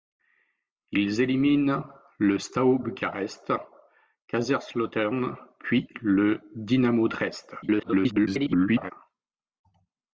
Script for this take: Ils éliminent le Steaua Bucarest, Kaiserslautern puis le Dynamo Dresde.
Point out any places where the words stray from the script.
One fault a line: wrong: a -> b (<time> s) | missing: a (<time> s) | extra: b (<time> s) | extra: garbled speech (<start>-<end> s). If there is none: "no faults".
extra: garbled speech (7.6-8.9 s)